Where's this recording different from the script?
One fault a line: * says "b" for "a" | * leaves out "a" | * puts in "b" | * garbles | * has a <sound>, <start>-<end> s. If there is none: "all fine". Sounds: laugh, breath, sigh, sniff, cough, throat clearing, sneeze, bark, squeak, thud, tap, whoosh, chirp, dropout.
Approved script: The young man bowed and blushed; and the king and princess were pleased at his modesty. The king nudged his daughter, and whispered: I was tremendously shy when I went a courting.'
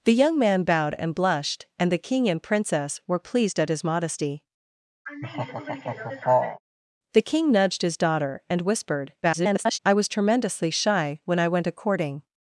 * has a laugh, 5.1-6.6 s
* garbles